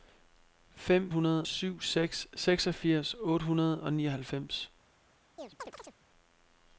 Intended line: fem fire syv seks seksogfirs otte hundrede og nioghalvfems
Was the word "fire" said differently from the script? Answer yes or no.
yes